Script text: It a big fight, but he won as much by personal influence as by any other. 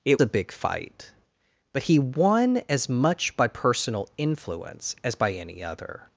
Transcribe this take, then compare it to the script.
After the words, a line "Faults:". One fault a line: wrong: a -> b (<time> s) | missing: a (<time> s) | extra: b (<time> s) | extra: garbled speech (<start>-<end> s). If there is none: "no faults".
It a big fight, but he won as much by personal influence as by any other.
Faults:
no faults